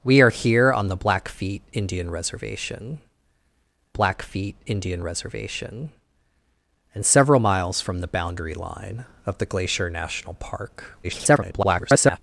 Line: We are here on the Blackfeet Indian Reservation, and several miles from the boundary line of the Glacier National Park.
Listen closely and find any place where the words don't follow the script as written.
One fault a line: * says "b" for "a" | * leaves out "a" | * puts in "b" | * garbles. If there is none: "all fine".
* puts in "Blackfeet Indian Reservation"
* garbles